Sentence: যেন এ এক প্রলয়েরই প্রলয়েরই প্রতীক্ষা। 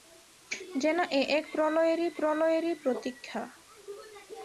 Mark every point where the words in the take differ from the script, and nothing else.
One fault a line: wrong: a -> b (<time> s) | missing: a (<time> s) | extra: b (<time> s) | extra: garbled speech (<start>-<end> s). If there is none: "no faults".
no faults